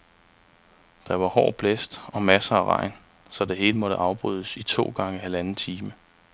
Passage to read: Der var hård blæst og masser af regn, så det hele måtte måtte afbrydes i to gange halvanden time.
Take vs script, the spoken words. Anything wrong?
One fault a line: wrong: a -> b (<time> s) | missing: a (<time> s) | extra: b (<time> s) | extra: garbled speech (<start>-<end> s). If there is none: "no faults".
missing: måtte (4.0 s)